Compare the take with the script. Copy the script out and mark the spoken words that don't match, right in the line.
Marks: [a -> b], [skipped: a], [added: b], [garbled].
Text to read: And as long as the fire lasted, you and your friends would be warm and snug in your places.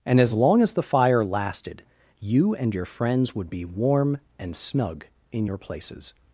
And as long as the fire lasted, you and your friends would be warm and snug in your places.